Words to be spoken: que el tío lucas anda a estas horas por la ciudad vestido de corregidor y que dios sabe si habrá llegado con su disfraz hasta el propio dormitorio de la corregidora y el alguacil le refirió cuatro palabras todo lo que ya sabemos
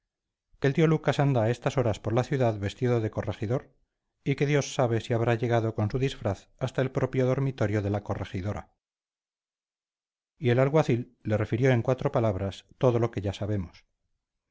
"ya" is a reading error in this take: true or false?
false